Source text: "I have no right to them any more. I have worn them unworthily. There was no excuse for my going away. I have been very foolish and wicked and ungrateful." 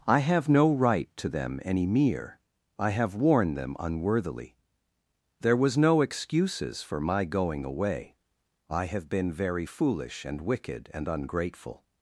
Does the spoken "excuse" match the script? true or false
false